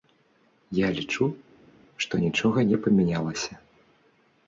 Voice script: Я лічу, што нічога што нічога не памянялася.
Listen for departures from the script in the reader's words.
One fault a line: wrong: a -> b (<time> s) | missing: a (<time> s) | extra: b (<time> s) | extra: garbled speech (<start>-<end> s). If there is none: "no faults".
missing: што нічога (2.7 s)